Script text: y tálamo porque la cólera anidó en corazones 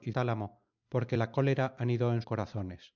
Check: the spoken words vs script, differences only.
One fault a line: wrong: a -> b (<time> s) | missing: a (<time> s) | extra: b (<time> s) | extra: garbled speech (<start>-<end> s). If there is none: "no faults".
no faults